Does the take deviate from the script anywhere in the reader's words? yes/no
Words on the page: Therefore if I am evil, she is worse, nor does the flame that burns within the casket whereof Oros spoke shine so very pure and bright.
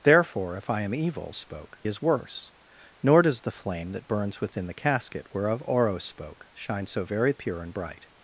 yes